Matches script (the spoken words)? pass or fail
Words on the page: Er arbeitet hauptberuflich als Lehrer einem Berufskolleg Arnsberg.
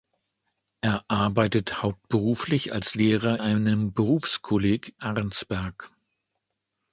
pass